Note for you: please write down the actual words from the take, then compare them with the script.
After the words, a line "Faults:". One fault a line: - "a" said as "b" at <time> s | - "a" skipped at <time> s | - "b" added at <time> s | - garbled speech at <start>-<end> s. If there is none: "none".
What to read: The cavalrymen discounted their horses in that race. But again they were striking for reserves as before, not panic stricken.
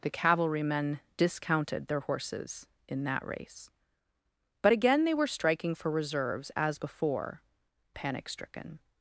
The cavalrymen discounted their horses in that race. But again they were striking for reserves as before, panic stricken.
Faults:
- "not" skipped at 7.4 s